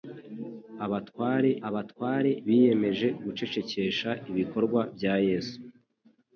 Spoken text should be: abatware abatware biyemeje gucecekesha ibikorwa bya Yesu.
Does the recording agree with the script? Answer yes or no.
yes